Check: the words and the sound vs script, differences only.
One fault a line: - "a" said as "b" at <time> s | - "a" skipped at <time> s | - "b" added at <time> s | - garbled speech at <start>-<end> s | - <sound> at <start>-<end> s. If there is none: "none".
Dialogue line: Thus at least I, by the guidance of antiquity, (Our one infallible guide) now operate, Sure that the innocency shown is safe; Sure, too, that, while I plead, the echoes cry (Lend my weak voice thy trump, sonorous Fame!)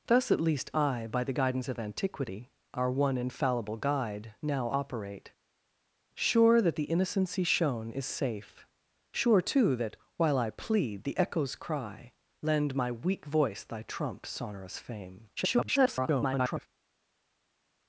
- garbled speech at 15.4-16.7 s